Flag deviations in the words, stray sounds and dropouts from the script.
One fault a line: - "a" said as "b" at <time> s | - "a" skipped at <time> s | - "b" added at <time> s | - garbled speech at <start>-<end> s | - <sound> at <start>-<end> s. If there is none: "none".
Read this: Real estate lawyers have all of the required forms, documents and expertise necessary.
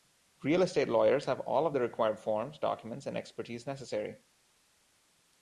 none